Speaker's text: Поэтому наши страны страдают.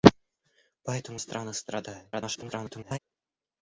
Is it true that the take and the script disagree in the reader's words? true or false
true